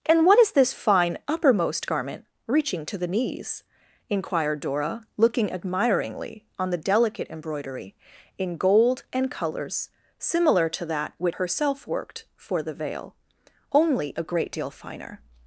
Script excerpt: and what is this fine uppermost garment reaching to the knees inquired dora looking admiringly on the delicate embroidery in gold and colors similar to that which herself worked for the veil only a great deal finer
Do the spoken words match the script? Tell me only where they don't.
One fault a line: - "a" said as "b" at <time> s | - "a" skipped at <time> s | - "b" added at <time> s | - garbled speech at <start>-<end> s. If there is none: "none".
none